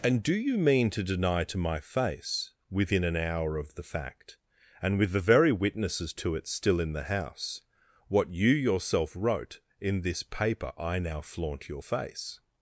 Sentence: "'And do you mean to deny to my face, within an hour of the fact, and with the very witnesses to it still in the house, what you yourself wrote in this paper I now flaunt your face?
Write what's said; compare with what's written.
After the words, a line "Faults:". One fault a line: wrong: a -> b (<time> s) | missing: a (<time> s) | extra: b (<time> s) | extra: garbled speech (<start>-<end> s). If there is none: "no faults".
"'And do you mean to deny to my face, within an hour of the fact, and with the very witnesses to it still in the house, what you yourself wrote in this paper I now flaunt your face?
Faults:
no faults